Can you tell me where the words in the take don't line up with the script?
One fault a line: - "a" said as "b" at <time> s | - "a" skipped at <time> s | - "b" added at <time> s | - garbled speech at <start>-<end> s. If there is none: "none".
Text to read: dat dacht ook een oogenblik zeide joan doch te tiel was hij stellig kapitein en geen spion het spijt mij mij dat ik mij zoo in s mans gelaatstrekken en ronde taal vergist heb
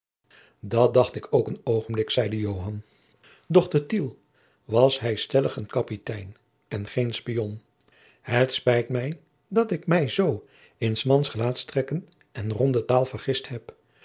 - "ik" added at 1.1 s
- "een" added at 5.5 s
- "mij" skipped at 9.2 s